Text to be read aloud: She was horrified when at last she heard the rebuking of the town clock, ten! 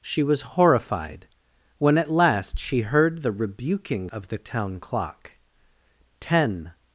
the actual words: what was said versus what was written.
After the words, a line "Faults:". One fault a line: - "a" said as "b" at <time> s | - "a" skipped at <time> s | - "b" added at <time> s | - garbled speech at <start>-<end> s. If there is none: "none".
She was horrified when at last she heard the rebuking of the town clock, ten!
Faults:
none